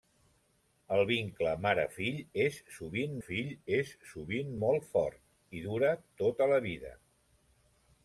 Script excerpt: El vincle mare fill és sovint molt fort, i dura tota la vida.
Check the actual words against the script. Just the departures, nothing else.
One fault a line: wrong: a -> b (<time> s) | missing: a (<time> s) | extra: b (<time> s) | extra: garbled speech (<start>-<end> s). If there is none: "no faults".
extra: fill és sovint (3.3 s)